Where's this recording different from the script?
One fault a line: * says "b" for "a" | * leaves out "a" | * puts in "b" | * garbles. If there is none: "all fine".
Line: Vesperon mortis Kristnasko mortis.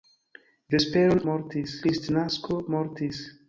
all fine